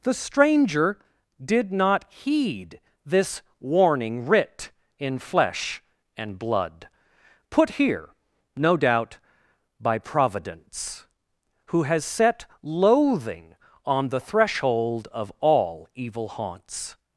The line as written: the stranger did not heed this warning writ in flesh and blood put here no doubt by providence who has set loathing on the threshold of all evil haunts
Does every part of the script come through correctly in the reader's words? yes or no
yes